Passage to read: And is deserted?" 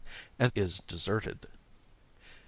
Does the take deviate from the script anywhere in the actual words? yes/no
no